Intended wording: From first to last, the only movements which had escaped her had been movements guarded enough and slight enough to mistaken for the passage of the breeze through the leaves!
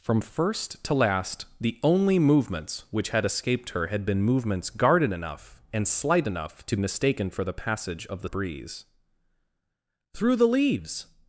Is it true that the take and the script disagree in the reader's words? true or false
false